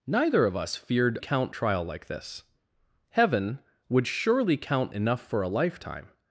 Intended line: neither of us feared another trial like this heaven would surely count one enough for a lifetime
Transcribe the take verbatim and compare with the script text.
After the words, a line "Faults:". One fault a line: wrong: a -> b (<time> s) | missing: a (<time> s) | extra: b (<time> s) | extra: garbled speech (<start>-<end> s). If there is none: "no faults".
neither of us feared count trial like this heaven would surely count enough for a lifetime
Faults:
wrong: another -> count (1.2 s)
missing: one (4.9 s)